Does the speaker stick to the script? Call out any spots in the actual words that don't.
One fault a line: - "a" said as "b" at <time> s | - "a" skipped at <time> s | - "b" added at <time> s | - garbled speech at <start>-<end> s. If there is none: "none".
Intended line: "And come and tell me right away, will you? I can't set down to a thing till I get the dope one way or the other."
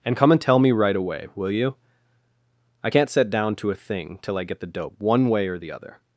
none